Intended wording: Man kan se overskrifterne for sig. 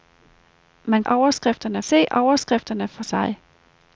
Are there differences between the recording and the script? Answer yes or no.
yes